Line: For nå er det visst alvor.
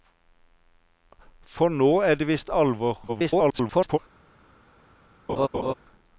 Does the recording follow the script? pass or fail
fail